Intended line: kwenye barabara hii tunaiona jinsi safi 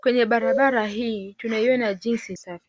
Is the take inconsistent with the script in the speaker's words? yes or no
no